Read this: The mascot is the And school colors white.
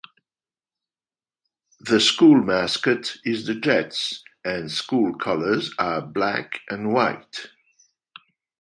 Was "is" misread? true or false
false